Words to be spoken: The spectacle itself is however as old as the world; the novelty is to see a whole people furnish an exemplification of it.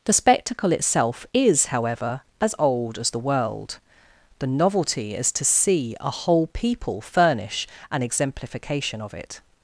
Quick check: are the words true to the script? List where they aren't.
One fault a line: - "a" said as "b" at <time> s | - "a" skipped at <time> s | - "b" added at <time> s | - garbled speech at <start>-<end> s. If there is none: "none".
none